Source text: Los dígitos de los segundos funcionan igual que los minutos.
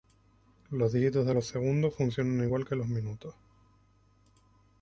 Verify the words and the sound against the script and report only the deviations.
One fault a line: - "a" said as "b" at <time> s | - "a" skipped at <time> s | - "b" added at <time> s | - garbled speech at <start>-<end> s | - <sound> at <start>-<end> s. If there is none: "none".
none